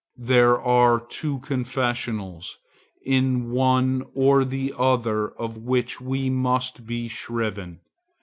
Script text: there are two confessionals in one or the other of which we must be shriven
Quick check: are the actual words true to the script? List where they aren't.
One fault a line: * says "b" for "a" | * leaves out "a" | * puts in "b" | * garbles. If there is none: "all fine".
all fine